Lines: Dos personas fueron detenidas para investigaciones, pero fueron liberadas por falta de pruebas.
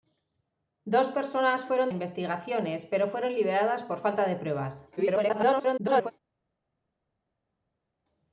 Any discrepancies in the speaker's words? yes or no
yes